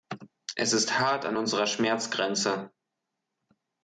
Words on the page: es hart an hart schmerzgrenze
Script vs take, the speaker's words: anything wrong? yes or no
yes